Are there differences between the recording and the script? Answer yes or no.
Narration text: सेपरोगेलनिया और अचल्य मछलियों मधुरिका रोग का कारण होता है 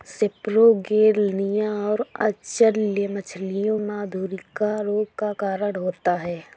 no